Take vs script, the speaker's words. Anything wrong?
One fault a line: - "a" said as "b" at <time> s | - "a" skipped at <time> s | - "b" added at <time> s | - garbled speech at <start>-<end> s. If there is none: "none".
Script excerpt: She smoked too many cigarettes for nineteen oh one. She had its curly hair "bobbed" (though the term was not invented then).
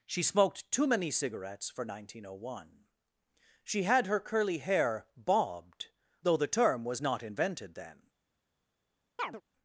- "its" said as "her" at 4.1 s